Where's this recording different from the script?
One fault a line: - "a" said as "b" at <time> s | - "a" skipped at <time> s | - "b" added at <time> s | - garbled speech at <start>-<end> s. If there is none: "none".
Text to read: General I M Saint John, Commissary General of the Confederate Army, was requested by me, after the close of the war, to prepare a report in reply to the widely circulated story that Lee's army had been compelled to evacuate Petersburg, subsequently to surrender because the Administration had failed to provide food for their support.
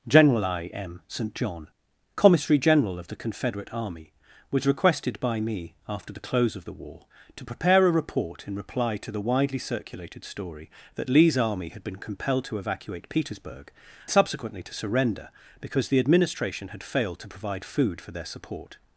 none